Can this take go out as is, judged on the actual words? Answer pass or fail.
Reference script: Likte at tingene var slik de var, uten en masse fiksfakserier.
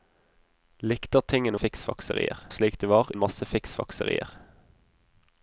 fail